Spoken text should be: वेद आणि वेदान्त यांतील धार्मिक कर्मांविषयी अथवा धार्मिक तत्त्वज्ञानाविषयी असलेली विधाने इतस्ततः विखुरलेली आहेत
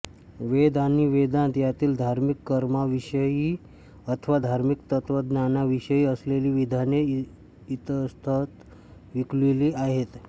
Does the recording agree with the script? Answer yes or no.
yes